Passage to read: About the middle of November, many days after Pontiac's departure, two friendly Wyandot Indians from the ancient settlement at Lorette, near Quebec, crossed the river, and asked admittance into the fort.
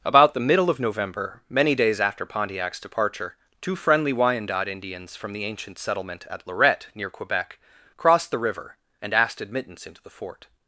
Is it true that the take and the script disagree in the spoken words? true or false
false